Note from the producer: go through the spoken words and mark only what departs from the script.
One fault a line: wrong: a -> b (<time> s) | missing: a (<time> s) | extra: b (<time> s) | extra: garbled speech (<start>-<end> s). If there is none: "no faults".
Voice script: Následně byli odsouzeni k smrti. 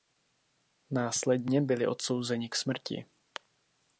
no faults